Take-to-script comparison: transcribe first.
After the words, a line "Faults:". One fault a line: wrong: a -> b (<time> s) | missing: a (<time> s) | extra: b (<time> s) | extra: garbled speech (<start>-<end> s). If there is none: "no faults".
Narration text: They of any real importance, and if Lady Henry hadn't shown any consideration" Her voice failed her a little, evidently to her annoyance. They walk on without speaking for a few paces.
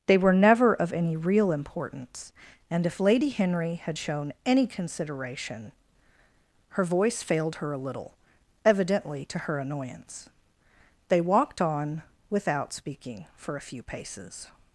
They were never of any real importance, and if Lady Henry had shown any consideration" Her voice failed her a little, evidently to her annoyance. They walked on without speaking for a few paces.
Faults:
extra: were never (0.2 s)
wrong: hadn't -> had (3.8 s)
wrong: walk -> walked (11.2 s)